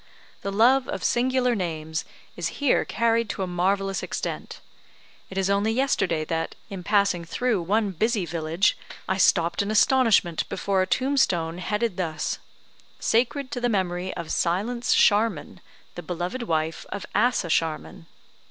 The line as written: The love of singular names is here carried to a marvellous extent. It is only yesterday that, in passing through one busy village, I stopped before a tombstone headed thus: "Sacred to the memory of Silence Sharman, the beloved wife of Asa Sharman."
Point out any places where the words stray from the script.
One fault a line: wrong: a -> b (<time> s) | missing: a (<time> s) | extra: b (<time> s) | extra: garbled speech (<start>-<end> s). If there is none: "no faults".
extra: in astonishment (9.6 s)